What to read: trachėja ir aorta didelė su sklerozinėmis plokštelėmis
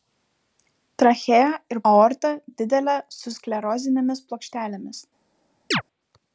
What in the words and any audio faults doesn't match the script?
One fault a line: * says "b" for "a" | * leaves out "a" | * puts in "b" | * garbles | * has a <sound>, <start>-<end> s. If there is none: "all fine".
* has a chirp, 5.7-5.8 s